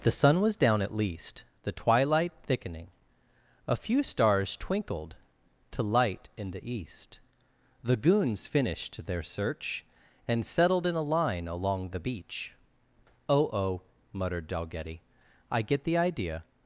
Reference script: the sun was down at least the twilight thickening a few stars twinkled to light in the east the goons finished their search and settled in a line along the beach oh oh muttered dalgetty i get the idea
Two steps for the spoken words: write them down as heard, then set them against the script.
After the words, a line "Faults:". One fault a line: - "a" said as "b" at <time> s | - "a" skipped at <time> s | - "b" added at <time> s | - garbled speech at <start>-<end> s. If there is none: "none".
the sun was down at least the twilight thickening a few stars twinkled to light in the east the goons finished their search and settled in a line along the beach oh oh muttered dalgetty i get the idea
Faults:
none